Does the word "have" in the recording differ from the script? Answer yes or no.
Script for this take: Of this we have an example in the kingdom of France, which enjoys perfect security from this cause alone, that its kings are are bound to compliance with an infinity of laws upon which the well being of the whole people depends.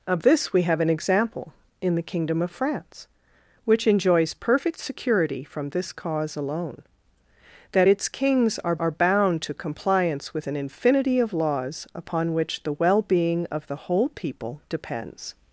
no